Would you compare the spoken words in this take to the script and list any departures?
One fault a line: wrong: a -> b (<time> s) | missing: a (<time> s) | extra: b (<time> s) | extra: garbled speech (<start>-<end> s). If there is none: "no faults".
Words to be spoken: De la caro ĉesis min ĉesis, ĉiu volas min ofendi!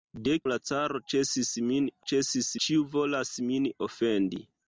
no faults